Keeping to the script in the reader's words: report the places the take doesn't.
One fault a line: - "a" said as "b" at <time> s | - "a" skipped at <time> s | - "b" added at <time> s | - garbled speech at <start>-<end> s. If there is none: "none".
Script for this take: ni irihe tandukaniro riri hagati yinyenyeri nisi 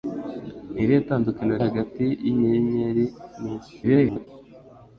- "riri" skipped at 1.6 s
- garbled speech at 3.8-4.3 s